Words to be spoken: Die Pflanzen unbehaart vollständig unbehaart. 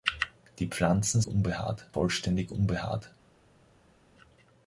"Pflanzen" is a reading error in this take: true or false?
false